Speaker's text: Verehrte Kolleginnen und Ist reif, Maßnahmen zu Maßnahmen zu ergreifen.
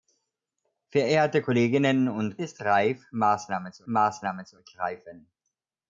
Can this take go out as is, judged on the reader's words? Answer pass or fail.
pass